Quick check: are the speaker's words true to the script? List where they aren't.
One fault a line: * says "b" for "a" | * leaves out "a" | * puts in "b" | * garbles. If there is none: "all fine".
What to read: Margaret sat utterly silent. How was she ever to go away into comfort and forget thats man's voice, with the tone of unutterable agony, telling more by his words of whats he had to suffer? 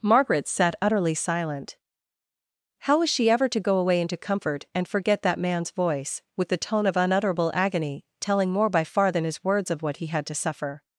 * says "that" for "thats"
* puts in "far than"
* says "what" for "whats"